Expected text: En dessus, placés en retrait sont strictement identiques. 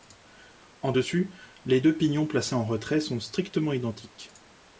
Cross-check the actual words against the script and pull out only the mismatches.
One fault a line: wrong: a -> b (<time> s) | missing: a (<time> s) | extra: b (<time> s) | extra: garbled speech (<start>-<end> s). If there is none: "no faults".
extra: les deux pignons (1.6 s)